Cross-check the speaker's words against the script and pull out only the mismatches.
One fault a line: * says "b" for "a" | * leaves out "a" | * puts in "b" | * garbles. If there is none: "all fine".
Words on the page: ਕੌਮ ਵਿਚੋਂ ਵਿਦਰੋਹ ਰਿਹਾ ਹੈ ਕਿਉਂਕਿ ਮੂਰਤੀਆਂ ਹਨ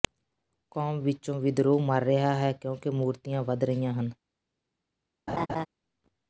* puts in "ਮਰ"
* puts in "ਵਧ ਰਹੀਆਂ"